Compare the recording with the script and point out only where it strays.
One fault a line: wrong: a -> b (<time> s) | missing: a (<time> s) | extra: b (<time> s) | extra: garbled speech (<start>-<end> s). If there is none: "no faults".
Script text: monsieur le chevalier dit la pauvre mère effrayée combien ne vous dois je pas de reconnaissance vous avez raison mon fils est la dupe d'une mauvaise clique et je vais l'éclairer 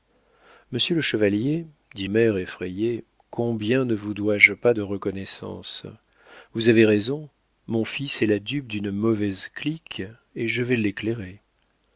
missing: la pauvre (2.1 s)